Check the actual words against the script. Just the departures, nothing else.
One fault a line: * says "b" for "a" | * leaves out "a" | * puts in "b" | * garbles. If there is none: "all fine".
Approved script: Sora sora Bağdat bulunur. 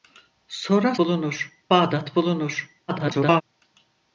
* says "bulunur" for "sora"
* garbles